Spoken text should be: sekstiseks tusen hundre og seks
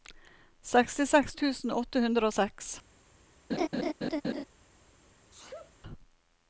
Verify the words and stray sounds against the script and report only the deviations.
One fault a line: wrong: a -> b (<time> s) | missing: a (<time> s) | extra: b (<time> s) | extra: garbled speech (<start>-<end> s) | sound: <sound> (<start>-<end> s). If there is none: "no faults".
extra: åtte (1.8 s)
sound: laugh (3.5-4.4 s)
sound: sneeze (5.3-5.8 s)